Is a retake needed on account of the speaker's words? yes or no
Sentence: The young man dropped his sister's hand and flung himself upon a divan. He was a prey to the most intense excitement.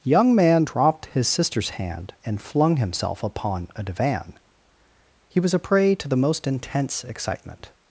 yes